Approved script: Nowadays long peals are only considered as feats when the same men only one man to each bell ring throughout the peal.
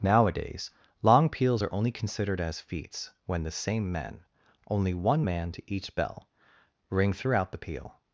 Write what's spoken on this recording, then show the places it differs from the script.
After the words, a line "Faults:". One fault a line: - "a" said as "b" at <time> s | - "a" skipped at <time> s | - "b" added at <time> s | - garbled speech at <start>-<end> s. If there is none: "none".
Nowadays long peals are only considered as feats when the same men only one man to each bell ring throughout the peal.
Faults:
none